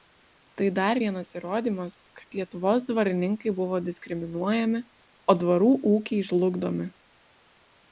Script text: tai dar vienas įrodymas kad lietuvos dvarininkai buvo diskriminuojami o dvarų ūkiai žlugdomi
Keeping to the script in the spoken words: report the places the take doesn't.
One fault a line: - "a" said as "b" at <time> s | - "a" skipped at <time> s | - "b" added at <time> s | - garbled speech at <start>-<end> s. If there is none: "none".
none